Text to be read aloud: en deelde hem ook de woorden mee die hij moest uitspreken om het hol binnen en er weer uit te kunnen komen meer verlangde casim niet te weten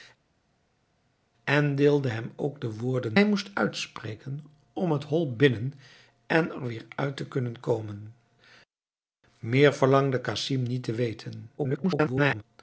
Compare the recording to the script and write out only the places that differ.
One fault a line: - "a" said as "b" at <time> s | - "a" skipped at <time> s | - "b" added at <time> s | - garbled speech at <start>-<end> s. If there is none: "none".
- "mee die" skipped at 3.2 s
- garbled speech at 11.6-12.4 s